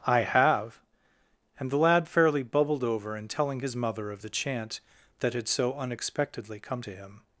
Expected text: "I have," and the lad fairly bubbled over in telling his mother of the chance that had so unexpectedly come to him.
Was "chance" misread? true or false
true